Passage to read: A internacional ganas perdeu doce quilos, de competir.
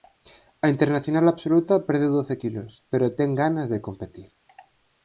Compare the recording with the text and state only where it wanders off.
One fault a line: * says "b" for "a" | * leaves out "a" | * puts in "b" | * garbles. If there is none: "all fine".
* says "absoluta" for "ganas"
* puts in "pero ten ganas"